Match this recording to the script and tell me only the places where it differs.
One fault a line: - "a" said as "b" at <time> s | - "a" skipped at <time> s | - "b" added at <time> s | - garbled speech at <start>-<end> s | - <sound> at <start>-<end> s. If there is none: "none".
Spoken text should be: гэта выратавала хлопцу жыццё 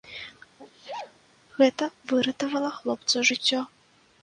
- sneeze at 0.6-1.2 s